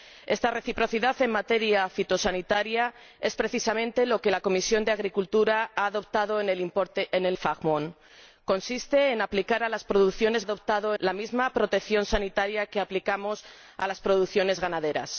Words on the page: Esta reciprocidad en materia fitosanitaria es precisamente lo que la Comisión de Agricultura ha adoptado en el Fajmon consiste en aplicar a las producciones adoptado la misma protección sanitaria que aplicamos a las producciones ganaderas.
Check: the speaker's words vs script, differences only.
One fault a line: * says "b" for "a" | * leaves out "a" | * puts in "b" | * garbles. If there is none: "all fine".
all fine